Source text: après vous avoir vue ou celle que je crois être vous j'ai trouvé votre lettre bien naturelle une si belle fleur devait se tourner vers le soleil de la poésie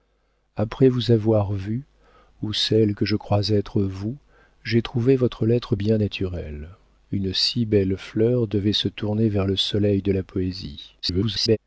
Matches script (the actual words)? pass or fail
fail